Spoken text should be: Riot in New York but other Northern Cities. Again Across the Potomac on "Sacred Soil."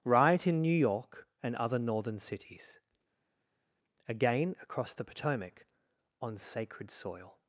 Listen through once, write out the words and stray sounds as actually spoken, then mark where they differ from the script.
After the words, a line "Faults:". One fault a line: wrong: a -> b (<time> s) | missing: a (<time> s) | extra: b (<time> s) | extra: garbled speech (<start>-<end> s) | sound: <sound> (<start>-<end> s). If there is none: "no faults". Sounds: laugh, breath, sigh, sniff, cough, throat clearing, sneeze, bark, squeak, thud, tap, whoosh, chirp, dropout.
Riot in New York and other Northern Cities. Again Across the Potomac on "Sacred Soil."
Faults:
wrong: but -> and (1.4 s)